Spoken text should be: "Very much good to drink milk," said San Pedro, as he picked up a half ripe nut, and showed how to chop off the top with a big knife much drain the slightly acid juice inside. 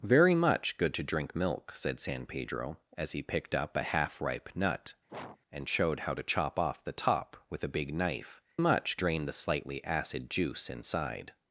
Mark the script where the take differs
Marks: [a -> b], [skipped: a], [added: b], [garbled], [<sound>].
"Very much good to drink milk," said San Pedro, as he picked up a half ripe nut, [sneeze] and showed how to chop off the top with a big knife much drain the slightly acid juice inside.